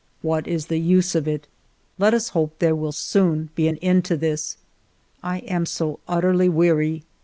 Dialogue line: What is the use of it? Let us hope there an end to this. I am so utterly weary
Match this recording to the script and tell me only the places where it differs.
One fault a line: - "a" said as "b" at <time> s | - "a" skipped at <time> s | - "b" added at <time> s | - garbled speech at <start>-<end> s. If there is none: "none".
- "will soon be" added at 2.7 s